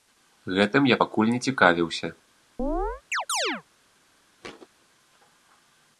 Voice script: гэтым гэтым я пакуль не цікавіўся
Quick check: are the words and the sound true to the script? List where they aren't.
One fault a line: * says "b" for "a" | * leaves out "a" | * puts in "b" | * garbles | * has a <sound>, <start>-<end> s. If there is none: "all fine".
* leaves out "гэтым"
* has a chirp, 2.6-3.6 s
* has a thud, 4.4-4.7 s